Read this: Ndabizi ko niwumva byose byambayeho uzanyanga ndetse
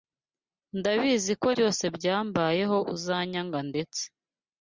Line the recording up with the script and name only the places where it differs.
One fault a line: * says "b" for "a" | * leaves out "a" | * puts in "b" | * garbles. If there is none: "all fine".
* leaves out "niwumva"